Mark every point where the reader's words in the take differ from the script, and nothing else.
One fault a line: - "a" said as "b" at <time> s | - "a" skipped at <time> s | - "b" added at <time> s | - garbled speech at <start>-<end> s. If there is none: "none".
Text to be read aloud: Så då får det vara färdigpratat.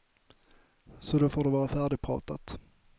none